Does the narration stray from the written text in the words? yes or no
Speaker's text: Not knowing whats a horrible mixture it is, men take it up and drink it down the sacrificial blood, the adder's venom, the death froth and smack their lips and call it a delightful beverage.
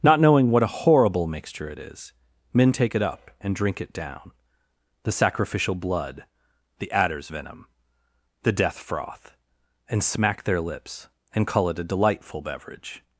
yes